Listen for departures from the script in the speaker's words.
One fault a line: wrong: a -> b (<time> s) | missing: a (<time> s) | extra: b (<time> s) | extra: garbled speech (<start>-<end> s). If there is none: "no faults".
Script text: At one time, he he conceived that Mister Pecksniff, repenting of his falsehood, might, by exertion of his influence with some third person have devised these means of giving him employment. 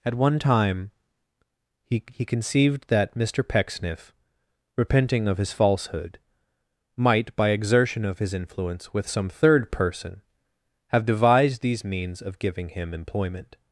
no faults